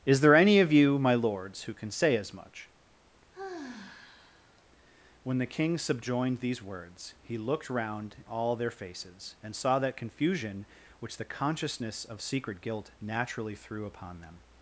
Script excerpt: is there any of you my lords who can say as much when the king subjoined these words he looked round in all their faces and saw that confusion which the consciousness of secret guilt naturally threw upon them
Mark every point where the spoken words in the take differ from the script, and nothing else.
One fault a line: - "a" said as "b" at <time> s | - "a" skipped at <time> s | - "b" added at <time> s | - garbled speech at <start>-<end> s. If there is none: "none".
- "in" skipped at 8.2 s